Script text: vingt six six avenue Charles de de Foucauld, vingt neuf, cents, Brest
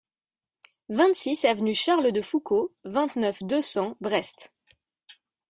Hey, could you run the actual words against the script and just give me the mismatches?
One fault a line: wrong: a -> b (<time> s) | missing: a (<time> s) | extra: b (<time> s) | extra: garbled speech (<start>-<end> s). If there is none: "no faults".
missing: six (1.4 s)
missing: de (2.2 s)
extra: deux (3.4 s)